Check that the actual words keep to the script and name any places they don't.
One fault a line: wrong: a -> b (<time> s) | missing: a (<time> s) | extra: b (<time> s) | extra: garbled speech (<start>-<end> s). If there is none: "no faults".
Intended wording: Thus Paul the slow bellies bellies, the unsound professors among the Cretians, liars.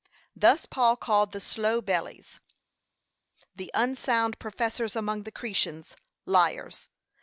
extra: called (0.9 s)
missing: bellies (2.4 s)